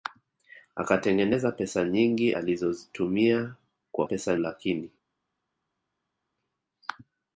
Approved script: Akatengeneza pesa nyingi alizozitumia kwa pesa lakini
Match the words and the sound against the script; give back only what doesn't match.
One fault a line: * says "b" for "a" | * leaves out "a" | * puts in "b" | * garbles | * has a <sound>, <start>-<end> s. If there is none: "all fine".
all fine